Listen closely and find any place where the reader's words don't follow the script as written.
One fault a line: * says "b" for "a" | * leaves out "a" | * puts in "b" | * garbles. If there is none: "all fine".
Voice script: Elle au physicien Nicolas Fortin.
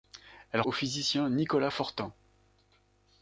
all fine